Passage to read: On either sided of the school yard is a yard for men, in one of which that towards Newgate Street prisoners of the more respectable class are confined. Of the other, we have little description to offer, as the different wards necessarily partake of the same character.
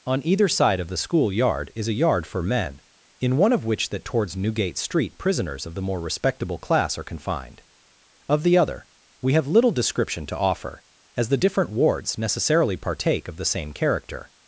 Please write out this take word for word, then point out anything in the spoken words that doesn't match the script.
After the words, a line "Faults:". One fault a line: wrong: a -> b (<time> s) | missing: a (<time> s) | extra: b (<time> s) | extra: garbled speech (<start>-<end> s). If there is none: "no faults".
On either side of the school yard is a yard for men, in one of which that towards Newgate Street prisoners of the more respectable class are confined. Of the other, we have little description to offer, as the different wards necessarily partake of the same character.
Faults:
wrong: sided -> side (0.5 s)